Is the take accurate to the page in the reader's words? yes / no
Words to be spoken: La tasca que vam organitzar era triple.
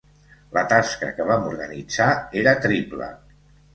yes